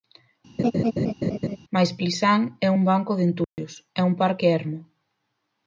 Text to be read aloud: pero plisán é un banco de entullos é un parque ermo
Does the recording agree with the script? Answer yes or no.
no